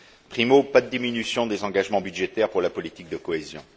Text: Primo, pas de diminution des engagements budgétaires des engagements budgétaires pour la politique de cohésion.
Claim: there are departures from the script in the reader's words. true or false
true